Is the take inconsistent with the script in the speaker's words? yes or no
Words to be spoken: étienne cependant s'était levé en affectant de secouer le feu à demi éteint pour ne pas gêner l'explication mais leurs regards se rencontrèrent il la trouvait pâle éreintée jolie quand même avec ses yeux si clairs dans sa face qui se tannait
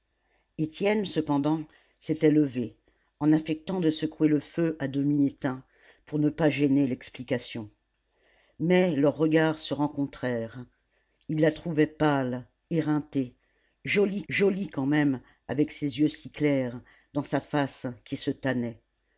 yes